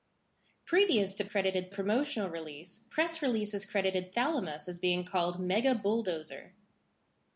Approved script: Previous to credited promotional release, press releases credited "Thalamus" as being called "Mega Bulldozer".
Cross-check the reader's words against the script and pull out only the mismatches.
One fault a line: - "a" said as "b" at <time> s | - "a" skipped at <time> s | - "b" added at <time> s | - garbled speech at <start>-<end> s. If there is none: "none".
none